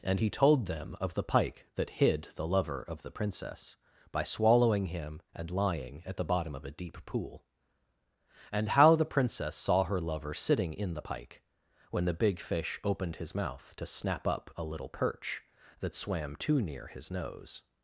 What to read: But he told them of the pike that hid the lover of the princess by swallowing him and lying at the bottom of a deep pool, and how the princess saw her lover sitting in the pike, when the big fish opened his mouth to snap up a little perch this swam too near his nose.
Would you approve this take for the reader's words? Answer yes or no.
no